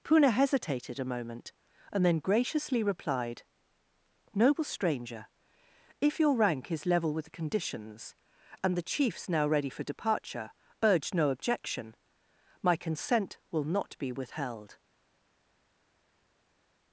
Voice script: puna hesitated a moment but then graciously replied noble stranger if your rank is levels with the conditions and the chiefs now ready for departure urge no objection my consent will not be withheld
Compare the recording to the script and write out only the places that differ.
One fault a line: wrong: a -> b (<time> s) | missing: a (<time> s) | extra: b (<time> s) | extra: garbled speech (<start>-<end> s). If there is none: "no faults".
wrong: but -> and (1.9 s)
wrong: levels -> level (6.8 s)